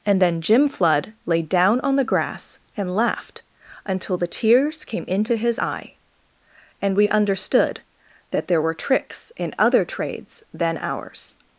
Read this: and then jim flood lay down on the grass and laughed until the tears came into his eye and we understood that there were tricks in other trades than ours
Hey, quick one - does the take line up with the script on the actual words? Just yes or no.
yes